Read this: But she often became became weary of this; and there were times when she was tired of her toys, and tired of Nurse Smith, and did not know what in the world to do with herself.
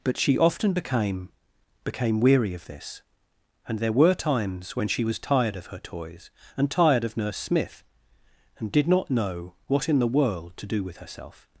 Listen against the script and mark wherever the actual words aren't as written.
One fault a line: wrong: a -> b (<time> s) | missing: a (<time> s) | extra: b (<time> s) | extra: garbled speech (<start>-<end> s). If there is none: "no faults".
no faults